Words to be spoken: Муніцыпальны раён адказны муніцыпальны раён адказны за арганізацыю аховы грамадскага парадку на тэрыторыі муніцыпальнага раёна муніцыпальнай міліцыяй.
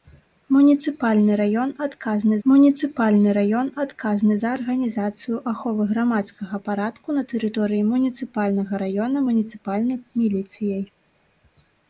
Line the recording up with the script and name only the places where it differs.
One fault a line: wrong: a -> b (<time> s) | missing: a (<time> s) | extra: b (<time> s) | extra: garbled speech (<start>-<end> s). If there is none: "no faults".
no faults